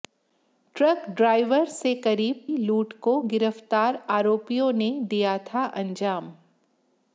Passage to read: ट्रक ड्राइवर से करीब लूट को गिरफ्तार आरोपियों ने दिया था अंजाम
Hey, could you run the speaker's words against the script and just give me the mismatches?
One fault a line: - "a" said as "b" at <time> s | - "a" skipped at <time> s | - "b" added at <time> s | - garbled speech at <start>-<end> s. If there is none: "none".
none